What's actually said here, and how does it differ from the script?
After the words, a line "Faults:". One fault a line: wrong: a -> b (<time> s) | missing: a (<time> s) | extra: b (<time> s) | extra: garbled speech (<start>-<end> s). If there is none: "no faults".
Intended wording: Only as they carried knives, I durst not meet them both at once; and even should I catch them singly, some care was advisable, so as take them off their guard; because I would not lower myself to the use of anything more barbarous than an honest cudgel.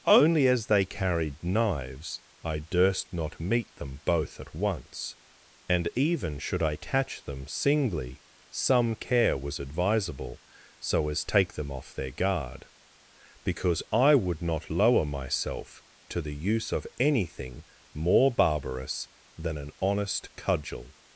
Only as they carried knives, I durst not meet them both at once; and even should I catch them singly, some care was advisable, so as take them off their guard; because I would not lower myself to the use of anything more barbarous than an honest cudgel.
Faults:
no faults